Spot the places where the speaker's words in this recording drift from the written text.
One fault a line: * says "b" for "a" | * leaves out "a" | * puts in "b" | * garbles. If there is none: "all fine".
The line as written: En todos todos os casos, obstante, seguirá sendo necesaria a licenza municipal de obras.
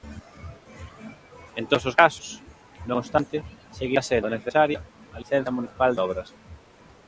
* leaves out "todos"
* puts in "non"